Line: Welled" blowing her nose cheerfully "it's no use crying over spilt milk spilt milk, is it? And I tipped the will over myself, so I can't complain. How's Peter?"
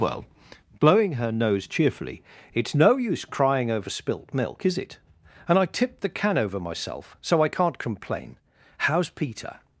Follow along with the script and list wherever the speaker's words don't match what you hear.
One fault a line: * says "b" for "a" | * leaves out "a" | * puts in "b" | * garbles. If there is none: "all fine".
* says "Well" for "Welled"
* leaves out "spilt milk"
* says "can" for "will"